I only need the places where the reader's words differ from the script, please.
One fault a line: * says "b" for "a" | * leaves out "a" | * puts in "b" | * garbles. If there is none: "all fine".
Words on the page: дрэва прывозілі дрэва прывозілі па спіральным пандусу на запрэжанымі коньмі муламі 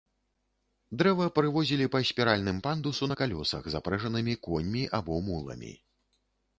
* leaves out "дрэва прывозілі"
* puts in "калёсах"
* puts in "або"